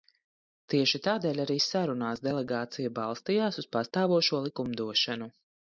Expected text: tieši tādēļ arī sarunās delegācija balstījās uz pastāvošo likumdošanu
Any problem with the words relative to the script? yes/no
no